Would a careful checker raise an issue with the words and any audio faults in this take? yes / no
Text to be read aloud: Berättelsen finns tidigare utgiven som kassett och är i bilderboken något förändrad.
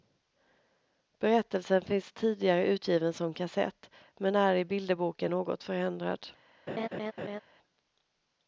yes